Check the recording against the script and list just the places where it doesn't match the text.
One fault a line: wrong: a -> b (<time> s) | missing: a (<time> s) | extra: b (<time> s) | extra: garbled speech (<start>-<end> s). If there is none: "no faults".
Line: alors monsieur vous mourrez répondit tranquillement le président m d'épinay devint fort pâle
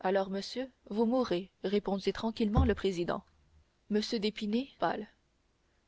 missing: devint fort (4.7 s)